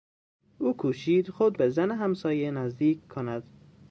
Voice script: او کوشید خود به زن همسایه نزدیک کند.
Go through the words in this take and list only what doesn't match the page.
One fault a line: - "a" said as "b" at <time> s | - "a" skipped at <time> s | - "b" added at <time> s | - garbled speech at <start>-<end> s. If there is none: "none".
none